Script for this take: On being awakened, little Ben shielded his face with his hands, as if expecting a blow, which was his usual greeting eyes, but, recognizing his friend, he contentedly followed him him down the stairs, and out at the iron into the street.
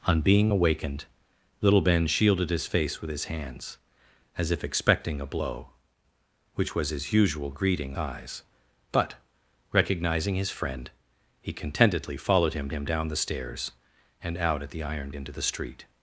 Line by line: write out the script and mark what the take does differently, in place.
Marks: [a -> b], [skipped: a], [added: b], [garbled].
On being awakened, little Ben shielded his face with his hands, as if expecting a blow, which was his usual greeting eyes, but, recognizing his friend, he contentedly followed him him down the stairs, and out at the iron into the street.